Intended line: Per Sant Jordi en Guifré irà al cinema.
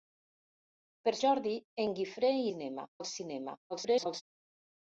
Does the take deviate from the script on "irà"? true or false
true